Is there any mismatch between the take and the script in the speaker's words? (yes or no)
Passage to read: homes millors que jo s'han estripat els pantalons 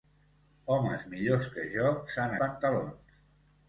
yes